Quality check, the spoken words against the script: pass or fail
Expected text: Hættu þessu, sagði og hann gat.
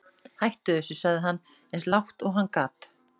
fail